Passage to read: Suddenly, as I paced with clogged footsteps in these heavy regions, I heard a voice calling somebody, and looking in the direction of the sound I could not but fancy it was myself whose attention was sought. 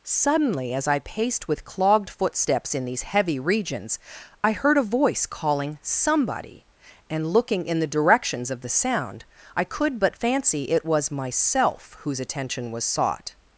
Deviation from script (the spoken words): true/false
true